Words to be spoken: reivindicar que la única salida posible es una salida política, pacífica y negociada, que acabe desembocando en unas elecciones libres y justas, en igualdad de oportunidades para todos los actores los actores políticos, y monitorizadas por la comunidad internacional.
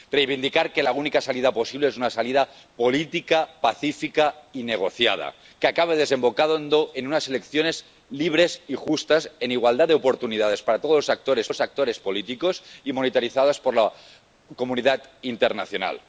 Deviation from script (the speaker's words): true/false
false